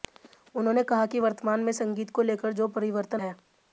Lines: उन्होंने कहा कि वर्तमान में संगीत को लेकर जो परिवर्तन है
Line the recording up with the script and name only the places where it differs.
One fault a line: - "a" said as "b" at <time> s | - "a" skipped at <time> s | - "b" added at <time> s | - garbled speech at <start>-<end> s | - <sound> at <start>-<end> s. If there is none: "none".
none